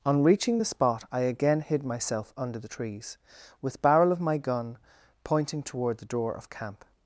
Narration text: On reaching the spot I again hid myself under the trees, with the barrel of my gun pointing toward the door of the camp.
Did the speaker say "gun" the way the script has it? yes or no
yes